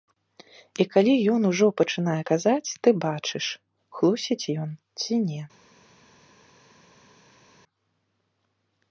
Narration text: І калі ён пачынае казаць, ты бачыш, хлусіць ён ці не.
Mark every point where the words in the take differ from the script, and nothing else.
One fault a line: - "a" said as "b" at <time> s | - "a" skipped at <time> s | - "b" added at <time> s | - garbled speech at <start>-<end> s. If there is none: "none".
- "ужо" added at 1.5 s